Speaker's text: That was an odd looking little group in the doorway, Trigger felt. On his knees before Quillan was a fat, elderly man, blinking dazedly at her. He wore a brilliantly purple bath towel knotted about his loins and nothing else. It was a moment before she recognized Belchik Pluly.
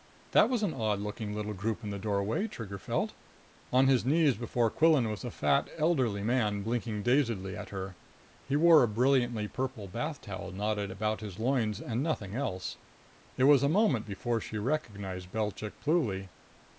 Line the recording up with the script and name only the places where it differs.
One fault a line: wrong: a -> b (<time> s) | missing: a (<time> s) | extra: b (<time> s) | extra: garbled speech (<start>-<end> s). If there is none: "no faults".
no faults